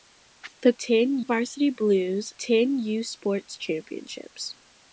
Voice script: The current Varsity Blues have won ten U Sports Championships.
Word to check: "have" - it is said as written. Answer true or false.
false